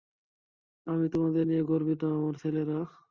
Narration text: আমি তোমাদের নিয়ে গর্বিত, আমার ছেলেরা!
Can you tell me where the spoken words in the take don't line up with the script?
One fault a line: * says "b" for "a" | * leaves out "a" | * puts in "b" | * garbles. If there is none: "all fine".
all fine